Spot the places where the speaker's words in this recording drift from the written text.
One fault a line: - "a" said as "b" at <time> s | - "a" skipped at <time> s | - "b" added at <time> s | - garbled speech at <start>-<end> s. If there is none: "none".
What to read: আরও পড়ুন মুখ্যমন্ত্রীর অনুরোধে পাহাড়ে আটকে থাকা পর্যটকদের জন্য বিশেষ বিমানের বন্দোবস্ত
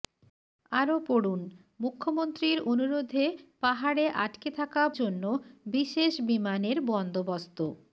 - "পর্যটকদের" skipped at 4.8 s